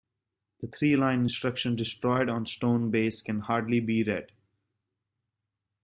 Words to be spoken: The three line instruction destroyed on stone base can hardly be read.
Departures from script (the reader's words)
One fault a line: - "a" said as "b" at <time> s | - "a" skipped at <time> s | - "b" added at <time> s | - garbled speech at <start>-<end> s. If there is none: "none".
none